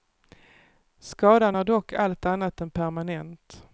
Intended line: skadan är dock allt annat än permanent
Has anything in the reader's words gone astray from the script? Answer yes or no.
no